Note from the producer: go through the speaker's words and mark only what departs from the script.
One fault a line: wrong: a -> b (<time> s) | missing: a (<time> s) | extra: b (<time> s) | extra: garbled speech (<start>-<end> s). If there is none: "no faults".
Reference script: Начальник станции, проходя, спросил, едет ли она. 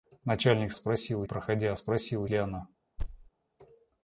wrong: станции -> спросил (0.7 s)
missing: едет (2.3 s)